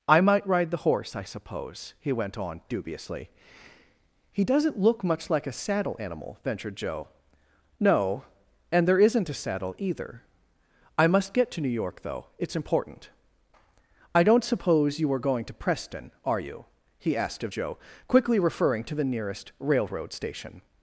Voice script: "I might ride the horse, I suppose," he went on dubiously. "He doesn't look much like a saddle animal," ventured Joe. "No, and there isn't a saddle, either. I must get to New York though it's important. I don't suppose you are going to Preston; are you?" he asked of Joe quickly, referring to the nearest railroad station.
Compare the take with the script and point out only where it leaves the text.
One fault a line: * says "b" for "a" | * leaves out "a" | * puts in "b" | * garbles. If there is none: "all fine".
all fine